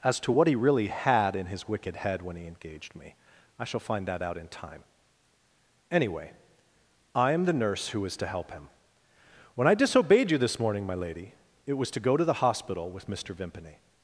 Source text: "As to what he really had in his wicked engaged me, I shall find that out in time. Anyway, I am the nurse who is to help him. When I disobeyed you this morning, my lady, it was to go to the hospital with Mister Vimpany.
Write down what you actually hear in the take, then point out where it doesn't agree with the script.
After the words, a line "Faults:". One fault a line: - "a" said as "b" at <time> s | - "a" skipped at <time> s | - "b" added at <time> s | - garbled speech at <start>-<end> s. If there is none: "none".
"As to what he really had in his wicked head when he engaged me, I shall find that out in time. Anyway, I am the nurse who is to help him. When I disobeyed you this morning, my lady, it was to go to the hospital with Mister Vimpany.
Faults:
- "head when he" added at 2.0 s